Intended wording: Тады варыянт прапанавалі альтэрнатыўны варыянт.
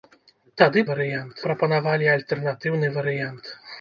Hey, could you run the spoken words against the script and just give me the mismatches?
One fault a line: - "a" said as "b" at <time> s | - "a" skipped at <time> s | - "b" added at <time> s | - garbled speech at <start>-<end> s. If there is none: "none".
none